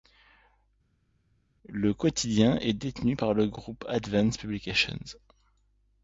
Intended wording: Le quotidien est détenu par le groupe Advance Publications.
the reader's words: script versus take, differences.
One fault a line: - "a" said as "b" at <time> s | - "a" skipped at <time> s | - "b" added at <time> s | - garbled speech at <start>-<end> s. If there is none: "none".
none